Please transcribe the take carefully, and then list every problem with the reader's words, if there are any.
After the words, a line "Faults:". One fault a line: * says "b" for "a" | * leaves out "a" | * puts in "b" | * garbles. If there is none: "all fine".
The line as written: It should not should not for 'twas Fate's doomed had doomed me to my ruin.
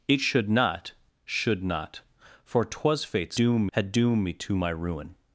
It should not should not for 'twas Fate's doomed had doomed me to my ruin.
Faults:
all fine